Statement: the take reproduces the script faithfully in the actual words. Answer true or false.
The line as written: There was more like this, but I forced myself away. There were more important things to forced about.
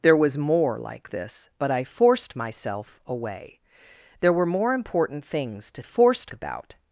true